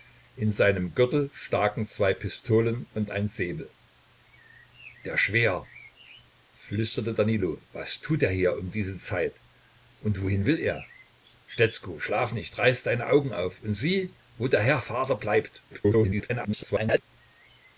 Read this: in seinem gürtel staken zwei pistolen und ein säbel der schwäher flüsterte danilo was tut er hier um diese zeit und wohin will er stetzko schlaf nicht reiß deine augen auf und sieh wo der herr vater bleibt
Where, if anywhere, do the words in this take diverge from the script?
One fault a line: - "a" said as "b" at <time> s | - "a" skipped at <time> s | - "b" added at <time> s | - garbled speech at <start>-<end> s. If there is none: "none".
- garbled speech at 15.7-17.0 s